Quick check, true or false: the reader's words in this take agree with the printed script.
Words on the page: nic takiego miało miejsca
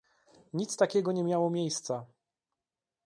false